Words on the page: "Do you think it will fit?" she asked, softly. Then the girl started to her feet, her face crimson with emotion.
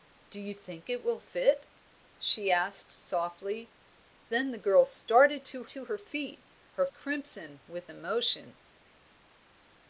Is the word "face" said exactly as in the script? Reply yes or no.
no